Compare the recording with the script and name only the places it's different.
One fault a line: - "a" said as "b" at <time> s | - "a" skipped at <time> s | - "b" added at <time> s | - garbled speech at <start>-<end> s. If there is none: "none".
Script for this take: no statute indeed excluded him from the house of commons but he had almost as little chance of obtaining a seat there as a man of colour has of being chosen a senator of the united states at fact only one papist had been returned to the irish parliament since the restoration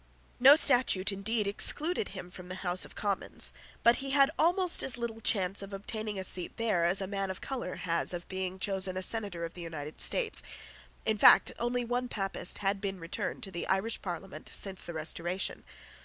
- "at" said as "in" at 11.0 s